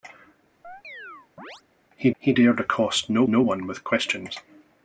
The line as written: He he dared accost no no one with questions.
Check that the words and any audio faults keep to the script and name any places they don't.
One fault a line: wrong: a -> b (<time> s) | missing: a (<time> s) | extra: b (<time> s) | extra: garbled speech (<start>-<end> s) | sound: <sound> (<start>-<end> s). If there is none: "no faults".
sound: chirp (0.6-1.6 s)